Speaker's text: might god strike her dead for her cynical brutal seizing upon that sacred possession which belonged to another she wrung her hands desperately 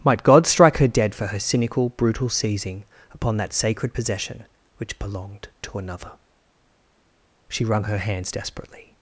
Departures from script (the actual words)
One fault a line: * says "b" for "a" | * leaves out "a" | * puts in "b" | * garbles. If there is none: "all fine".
all fine